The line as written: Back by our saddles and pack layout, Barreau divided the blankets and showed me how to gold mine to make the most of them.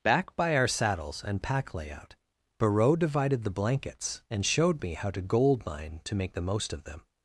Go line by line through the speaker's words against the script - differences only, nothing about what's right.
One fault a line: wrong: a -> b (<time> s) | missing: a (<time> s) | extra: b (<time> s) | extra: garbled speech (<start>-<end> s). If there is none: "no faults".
no faults